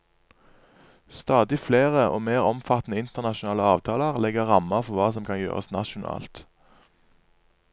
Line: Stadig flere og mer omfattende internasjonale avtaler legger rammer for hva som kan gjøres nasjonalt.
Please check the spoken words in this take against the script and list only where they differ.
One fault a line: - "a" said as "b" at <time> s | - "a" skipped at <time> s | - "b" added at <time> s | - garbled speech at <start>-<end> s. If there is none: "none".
none